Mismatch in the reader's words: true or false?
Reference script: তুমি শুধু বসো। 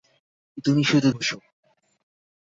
false